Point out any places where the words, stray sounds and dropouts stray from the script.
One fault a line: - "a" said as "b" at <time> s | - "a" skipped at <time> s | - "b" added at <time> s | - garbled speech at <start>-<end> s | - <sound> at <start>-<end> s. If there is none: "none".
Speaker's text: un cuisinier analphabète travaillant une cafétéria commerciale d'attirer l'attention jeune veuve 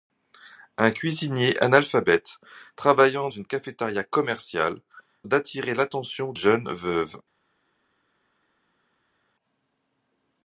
none